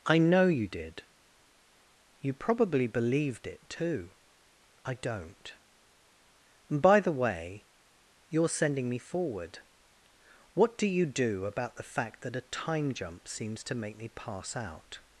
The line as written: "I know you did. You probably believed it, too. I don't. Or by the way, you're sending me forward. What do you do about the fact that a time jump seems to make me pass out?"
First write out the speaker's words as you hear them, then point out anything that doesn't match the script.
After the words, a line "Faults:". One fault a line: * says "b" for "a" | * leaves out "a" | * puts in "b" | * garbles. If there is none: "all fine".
"I know you did. You probably believed it, too. I don't. And by the way, you're sending me forward. What do you do about the fact that a time jump seems to make me pass out?"
Faults:
* says "And" for "Or"